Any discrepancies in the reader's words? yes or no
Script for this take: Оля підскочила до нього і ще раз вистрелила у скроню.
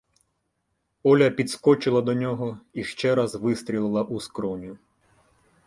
no